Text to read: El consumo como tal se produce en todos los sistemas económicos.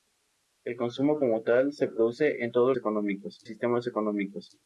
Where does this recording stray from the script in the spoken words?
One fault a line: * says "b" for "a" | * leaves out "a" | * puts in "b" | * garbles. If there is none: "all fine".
* says "económicos" for "los"